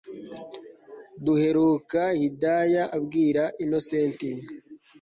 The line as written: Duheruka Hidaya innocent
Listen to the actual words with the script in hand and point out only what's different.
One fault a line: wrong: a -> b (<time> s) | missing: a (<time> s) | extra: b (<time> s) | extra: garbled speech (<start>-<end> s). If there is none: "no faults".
extra: abwira (3.0 s)